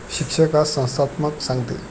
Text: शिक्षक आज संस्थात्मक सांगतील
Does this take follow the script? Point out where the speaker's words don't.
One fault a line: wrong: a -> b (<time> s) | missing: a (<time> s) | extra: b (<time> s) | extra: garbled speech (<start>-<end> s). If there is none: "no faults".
no faults